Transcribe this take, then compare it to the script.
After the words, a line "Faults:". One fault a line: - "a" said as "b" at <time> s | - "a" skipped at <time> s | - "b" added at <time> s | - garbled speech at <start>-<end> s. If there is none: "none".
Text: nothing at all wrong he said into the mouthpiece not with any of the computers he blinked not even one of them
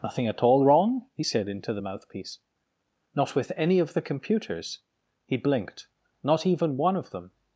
nothing at all wrong he said into the mouthpiece not with any of the computers he blinked not even one of them
Faults:
none